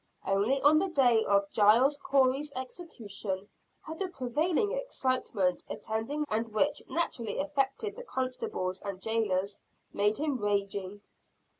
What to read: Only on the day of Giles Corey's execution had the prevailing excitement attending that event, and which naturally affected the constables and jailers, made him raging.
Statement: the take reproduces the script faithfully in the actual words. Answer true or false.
false